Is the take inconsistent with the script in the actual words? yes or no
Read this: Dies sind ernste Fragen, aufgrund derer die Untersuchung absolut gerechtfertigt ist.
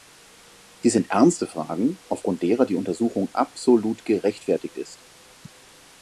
no